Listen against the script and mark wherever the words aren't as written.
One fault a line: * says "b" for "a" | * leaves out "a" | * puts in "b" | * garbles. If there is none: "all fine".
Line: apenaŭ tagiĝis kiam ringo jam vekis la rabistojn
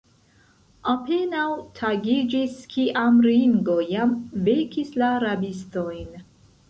all fine